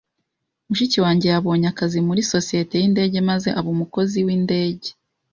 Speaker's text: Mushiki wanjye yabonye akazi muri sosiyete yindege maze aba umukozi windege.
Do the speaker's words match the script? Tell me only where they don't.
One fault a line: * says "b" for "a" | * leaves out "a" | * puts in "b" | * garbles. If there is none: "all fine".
all fine